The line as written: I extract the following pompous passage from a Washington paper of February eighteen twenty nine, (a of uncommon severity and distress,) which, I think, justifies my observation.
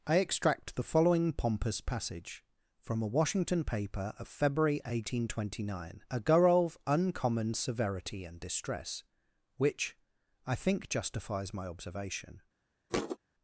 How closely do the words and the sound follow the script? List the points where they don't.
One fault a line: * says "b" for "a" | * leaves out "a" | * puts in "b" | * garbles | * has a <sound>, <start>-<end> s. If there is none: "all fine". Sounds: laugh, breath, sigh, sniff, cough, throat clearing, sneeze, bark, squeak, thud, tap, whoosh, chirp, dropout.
* has a thud, 12.9-13.2 s